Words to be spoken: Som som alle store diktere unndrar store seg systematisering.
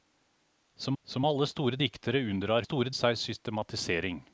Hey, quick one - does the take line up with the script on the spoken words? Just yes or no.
yes